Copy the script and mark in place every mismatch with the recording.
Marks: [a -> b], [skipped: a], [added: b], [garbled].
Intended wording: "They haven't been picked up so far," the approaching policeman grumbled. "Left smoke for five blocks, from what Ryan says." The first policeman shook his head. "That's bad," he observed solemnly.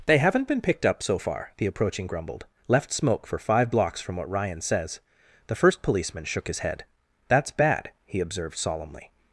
"They haven't been picked up so far," the approaching [skipped: policeman] grumbled. "Left smoke for five blocks, from what Ryan says." The first policeman shook his head. "That's bad," he observed solemnly.